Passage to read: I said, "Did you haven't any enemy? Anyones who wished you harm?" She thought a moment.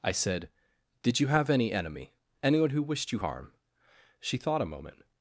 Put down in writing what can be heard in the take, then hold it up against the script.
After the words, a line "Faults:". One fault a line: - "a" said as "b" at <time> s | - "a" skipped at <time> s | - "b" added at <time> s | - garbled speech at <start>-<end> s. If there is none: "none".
I said, "Did you have any enemy? Anyone who wished you harm?" She thought a moment.
Faults:
- "haven't" said as "have" at 1.3 s
- "Anyones" said as "Anyone" at 2.4 s